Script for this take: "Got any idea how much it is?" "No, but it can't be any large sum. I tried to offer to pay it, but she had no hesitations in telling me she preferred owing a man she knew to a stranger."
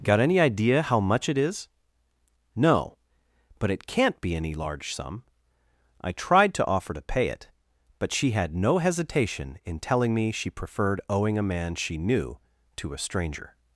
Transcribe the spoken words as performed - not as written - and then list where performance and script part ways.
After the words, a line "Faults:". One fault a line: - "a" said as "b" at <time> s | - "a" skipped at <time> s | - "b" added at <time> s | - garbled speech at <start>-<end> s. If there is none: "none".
"Got any idea how much it is?" "No, but it can't be any large sum. I tried to offer to pay it, but she had no hesitation in telling me she preferred owing a man she knew to a stranger."
Faults:
- "hesitations" said as "hesitation" at 8.8 s